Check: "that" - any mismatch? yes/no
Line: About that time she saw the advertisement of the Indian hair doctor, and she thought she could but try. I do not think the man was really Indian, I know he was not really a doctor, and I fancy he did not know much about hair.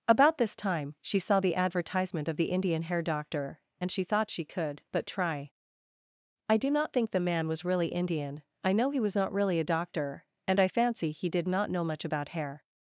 yes